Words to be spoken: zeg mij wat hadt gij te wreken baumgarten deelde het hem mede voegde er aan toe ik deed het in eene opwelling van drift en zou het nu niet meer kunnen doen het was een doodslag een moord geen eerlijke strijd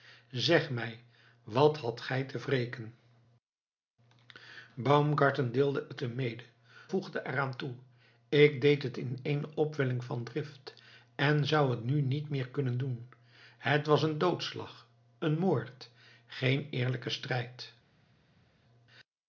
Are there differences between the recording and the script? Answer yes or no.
no